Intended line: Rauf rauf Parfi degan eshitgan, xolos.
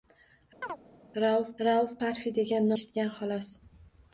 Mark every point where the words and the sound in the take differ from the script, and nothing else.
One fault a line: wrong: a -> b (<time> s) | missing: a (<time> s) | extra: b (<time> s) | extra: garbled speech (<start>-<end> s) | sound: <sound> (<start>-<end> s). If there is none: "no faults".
sound: chirp (0.6-0.8 s)